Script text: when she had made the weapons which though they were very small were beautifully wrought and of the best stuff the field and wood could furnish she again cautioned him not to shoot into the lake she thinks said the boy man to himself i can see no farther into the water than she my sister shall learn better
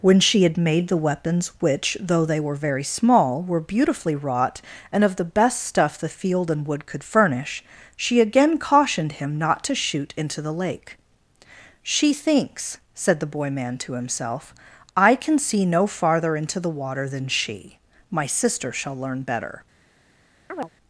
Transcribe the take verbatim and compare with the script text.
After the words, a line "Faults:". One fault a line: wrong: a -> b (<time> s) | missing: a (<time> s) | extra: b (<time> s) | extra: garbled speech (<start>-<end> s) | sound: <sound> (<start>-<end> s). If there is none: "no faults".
when she had made the weapons which though they were very small were beautifully wrought and of the best stuff the field and wood could furnish she again cautioned him not to shoot into the lake she thinks said the boy man to himself i can see no farther into the water than she my sister shall learn better
Faults:
sound: chirp (20.5-20.7 s)